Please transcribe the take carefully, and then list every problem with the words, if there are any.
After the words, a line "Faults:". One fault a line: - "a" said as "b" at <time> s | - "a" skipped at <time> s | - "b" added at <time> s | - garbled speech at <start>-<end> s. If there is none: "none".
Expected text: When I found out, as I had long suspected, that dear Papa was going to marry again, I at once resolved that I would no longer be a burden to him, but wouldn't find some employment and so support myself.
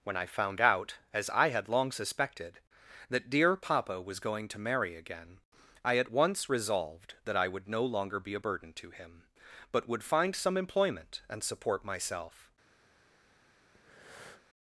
When I found out, as I had long suspected, that dear Papa was going to marry again, I at once resolved that I would no longer be a burden to him, but would find some employment and support myself.
Faults:
- "wouldn't" said as "would" at 9.9 s
- "so" skipped at 11.4 s